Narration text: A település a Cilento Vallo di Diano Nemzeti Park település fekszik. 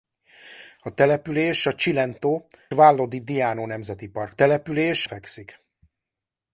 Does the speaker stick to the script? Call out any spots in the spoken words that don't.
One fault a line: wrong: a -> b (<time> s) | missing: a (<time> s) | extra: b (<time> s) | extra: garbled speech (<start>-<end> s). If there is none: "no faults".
no faults